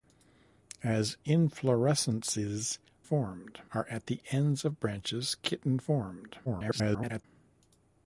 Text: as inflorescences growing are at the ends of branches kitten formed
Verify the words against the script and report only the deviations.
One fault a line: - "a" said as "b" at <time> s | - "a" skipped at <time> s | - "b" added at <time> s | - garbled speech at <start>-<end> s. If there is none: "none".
- "growing" said as "formed" at 3.0 s
- garbled speech at 6.5-7.2 s